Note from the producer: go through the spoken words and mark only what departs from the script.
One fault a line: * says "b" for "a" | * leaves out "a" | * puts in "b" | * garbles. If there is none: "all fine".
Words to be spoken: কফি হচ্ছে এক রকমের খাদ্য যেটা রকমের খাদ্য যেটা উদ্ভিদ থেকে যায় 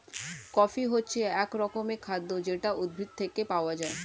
* leaves out "রকমের খাদ্য যেটা"
* puts in "পাওয়া"